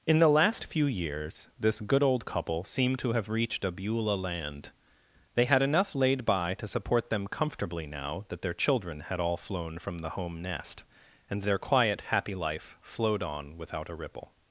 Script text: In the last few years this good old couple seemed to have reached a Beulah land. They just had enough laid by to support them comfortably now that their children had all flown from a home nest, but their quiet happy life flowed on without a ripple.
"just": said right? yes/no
no